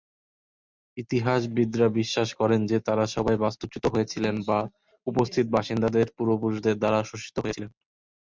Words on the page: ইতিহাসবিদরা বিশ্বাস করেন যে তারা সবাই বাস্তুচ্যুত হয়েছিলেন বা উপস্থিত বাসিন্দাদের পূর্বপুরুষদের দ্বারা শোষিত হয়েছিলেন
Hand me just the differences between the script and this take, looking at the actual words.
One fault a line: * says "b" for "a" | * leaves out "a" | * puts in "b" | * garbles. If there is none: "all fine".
all fine